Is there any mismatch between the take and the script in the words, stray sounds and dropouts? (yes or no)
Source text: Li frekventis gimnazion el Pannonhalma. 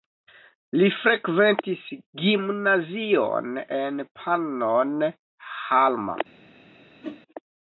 yes